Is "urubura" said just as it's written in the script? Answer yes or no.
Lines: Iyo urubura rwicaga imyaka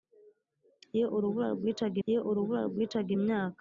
yes